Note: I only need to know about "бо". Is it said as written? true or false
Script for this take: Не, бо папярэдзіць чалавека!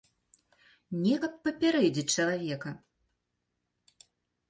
false